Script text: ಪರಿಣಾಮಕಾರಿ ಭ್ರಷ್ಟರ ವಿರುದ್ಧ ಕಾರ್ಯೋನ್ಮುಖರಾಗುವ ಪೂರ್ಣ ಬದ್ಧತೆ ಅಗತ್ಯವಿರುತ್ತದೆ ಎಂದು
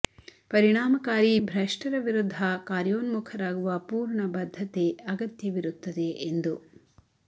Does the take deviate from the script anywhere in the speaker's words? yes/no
no